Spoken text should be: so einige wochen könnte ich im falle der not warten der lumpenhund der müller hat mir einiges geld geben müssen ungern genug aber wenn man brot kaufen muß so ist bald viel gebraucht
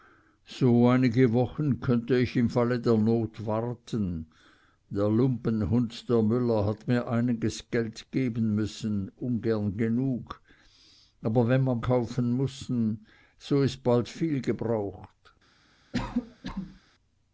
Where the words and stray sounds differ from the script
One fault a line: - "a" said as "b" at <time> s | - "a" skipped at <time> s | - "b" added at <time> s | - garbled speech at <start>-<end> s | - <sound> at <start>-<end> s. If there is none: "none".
- "brot" skipped at 11.8 s
- cough at 15.9-16.8 s